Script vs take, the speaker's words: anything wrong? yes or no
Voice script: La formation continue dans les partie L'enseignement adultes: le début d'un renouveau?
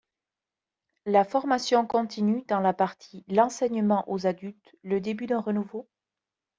yes